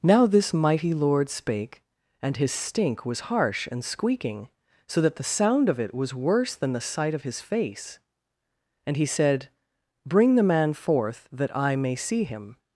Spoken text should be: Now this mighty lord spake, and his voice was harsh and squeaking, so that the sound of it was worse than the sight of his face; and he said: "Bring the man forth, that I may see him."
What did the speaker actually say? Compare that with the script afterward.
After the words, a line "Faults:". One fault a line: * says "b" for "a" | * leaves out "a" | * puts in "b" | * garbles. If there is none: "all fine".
Now this mighty lord spake, and his stink was harsh and squeaking, so that the sound of it was worse than the sight of his face; and he said: "Bring the man forth, that I may see him."
Faults:
* says "stink" for "voice"